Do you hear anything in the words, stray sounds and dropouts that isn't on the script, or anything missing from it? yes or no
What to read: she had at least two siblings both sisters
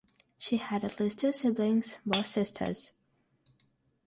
no